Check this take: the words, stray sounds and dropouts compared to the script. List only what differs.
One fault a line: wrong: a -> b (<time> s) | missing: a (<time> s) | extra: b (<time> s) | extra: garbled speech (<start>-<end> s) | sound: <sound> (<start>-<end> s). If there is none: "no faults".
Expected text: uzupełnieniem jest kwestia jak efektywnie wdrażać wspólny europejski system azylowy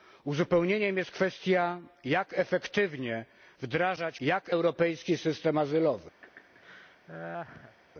wrong: wspólny -> jak (4.2 s)
sound: laugh (6.2-7.8 s)